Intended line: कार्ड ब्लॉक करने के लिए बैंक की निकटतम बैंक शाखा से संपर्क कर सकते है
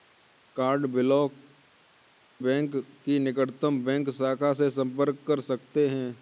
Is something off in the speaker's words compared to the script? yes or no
yes